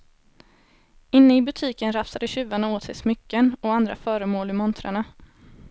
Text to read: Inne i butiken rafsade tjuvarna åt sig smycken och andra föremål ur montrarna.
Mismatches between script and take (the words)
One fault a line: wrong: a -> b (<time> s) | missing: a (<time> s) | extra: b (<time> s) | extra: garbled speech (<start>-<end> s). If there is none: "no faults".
no faults